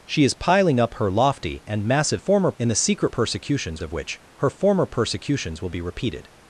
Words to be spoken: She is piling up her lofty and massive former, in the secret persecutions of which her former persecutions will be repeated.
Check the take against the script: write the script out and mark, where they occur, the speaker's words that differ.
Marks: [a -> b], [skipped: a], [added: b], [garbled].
She is piling up her lofty and massive former, in the secret persecutions of which her former persecutions will be repeated.